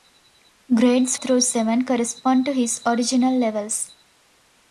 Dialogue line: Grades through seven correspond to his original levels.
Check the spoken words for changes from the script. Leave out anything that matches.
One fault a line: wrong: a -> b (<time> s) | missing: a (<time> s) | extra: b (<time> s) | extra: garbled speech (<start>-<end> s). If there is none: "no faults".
no faults